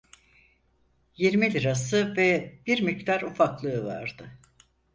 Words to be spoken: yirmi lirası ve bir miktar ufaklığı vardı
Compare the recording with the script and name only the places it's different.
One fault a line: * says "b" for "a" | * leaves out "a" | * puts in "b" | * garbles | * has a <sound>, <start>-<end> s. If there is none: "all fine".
all fine